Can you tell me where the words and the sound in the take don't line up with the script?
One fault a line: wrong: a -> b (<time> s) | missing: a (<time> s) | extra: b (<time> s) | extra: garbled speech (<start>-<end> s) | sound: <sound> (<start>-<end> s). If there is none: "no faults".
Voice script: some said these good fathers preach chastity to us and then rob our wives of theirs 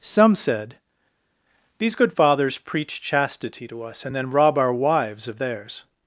no faults